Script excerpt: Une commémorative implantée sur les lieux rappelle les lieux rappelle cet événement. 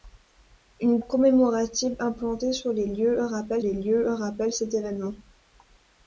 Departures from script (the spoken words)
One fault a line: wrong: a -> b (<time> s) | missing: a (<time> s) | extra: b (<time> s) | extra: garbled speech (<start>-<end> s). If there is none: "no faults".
no faults